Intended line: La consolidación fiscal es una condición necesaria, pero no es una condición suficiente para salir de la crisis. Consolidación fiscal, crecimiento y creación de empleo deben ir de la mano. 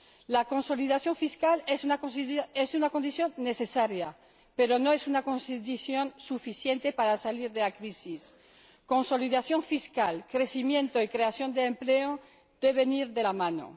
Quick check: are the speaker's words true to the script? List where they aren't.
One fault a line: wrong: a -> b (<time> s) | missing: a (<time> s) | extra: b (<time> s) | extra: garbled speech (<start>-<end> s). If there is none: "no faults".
no faults